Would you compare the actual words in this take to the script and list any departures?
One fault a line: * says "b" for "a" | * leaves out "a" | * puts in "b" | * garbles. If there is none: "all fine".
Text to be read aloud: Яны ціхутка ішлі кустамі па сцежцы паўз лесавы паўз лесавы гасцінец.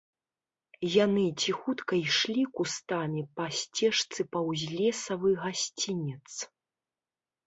* leaves out "паўз лесавы"